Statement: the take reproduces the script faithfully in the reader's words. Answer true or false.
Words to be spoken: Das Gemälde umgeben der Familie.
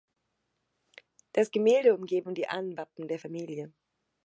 false